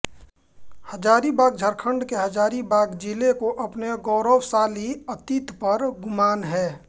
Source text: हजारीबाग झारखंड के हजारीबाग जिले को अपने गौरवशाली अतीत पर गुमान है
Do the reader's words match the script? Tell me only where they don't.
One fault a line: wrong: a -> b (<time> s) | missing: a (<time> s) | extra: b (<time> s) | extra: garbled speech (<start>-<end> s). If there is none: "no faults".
no faults